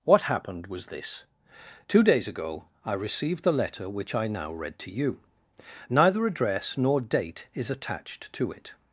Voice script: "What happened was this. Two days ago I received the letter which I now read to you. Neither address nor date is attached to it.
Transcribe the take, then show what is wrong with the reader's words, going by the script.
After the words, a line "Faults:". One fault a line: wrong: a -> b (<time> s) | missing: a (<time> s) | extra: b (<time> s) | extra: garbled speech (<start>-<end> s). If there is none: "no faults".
"What happened was this. Two days ago I received the letter which I now read to you. Neither address nor date is attached to it.
Faults:
no faults